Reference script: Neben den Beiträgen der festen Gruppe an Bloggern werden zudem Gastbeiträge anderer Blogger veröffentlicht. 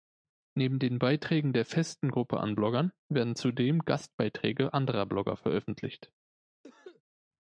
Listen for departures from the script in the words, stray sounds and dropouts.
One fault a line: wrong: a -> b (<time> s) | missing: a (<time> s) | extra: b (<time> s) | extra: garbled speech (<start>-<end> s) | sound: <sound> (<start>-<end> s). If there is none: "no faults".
sound: cough (6.6-7.0 s)